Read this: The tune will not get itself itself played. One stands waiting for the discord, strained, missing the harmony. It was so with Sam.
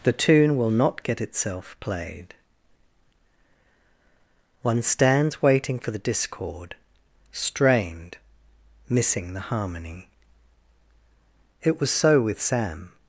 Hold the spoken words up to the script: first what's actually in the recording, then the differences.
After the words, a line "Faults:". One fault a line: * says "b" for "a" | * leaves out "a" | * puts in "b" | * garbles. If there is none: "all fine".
The tune will not get itself played. One stands waiting for the discord, strained, missing the harmony. It was so with Sam.
Faults:
* leaves out "itself"